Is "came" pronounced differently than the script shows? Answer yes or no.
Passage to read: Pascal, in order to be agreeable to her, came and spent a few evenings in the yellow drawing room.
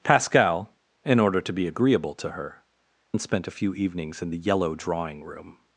yes